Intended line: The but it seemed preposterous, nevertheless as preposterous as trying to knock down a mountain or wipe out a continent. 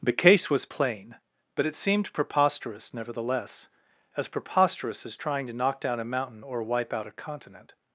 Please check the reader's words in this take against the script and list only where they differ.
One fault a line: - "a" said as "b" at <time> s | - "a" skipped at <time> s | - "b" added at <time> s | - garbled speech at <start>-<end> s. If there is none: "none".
- "case was plain" added at 0.1 s